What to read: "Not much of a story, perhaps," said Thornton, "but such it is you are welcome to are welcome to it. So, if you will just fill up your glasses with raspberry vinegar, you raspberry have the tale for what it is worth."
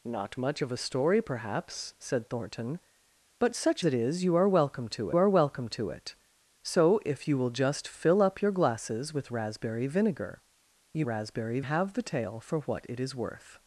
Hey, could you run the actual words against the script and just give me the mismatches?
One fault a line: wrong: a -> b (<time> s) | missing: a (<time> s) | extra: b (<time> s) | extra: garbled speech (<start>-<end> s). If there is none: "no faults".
no faults